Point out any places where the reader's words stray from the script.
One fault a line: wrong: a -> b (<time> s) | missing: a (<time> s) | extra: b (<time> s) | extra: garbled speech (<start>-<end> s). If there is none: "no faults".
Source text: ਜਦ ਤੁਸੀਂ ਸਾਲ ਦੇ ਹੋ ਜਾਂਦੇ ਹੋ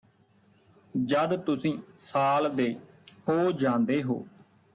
no faults